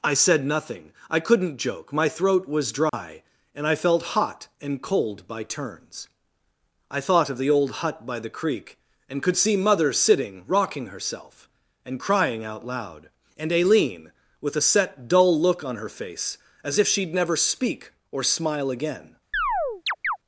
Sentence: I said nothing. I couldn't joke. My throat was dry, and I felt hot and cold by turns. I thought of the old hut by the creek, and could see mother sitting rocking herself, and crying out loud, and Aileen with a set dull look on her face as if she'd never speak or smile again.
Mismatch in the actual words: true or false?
false